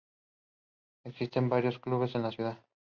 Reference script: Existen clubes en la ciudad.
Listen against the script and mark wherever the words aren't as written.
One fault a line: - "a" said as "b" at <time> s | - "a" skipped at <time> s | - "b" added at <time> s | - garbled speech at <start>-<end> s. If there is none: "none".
- "varios" added at 1.5 s